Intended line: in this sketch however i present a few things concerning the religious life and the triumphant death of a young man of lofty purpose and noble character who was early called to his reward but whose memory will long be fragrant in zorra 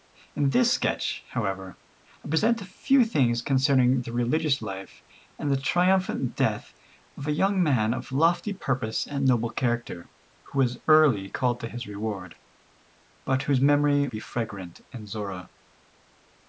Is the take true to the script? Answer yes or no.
no